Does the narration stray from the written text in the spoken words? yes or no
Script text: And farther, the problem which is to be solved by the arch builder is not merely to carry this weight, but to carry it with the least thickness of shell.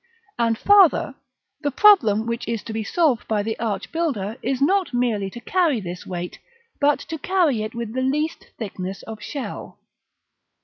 no